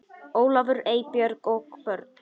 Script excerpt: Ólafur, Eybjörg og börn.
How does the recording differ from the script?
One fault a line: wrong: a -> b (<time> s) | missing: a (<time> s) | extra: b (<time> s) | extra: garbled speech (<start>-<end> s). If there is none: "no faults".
no faults